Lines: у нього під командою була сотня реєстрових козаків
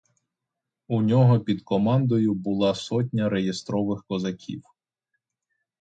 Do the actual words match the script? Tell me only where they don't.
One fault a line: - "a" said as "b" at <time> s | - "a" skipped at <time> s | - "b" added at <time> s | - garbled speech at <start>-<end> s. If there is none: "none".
none